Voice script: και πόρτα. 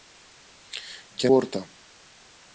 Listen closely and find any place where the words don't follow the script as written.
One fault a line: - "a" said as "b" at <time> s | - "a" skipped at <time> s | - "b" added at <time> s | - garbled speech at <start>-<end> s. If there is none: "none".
none